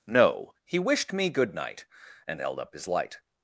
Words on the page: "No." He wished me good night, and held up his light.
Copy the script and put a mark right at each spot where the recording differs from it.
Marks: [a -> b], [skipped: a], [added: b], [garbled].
"No." He wished me good night, and held up his light.